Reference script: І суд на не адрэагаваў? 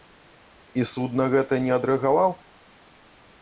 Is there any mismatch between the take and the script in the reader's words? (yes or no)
yes